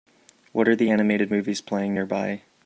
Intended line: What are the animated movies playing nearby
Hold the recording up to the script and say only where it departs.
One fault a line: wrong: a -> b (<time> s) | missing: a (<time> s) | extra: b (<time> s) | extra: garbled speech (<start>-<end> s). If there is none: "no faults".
no faults